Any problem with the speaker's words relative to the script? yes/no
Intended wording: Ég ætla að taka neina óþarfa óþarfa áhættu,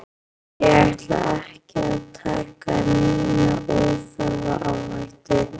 yes